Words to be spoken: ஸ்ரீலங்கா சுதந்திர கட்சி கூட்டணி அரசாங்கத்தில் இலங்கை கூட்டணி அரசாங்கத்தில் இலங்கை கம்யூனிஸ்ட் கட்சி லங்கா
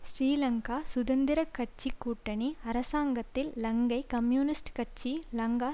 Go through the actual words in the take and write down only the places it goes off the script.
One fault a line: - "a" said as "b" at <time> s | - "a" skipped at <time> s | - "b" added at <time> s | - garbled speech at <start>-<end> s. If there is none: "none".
- "கூட்டணி அரசாங்கத்தில் இலங்கை" skipped at 4.0 s